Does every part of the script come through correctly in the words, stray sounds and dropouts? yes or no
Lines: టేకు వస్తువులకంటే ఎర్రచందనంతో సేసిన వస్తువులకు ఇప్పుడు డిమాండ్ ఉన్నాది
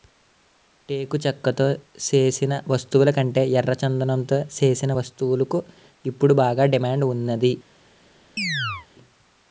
no